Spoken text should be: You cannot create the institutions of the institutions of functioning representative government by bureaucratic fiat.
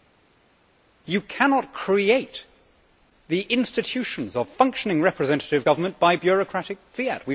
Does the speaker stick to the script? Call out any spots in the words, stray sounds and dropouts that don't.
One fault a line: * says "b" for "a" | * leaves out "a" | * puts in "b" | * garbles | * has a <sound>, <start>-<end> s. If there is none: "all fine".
* leaves out "the institutions of"